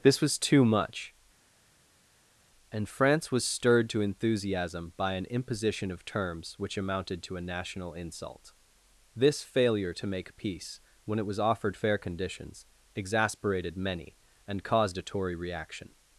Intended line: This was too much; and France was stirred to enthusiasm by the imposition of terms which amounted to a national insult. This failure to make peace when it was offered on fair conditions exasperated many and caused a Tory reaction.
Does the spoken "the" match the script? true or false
false